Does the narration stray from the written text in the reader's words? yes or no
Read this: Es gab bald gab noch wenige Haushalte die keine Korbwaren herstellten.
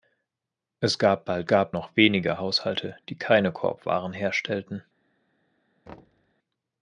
no